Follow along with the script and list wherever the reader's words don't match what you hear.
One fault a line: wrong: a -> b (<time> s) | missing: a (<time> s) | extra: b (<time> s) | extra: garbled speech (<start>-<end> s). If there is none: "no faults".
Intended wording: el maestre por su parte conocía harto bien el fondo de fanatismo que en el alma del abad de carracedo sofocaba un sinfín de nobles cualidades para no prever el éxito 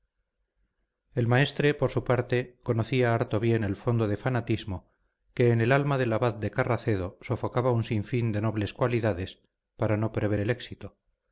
no faults